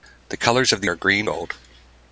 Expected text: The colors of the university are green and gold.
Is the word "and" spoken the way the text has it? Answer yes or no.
no